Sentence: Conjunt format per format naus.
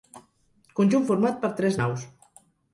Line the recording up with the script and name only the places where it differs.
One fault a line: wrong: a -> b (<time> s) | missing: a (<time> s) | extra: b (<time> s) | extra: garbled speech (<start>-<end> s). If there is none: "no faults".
wrong: format -> tres (1.6 s)